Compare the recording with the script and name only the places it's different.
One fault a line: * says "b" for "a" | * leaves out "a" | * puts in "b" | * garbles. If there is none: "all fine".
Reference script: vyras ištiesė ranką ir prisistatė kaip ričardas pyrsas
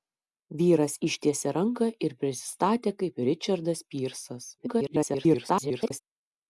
* garbles